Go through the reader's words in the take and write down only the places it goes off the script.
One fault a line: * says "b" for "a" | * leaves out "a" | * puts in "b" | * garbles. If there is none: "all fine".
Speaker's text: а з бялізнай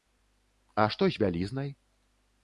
* puts in "што"